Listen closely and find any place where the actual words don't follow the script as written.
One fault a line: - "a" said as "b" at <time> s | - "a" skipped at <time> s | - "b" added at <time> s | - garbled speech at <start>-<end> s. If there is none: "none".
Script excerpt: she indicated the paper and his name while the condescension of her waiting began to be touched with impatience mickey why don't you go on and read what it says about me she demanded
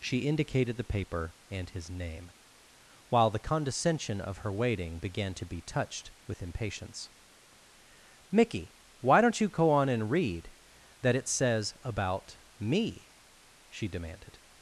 - "what" said as "that" at 11.0 s